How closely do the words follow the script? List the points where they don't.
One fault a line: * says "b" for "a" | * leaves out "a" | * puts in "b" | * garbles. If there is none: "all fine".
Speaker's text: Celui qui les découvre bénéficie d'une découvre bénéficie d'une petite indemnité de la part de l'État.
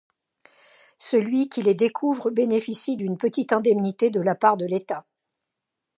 * leaves out "découvre bénéficie d'une"